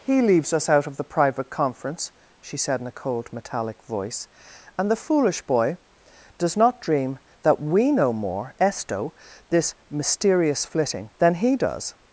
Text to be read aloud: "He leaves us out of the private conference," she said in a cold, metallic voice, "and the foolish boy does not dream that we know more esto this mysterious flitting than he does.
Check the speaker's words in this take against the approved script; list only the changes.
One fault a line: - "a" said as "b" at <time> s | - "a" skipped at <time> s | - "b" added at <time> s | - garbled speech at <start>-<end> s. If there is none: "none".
none